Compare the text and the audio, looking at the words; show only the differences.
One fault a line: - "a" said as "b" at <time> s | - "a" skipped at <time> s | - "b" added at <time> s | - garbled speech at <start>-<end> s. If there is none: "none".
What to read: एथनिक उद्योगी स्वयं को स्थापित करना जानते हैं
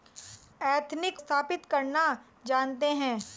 - "उद्योगी स्वयं को" skipped at 1.2 s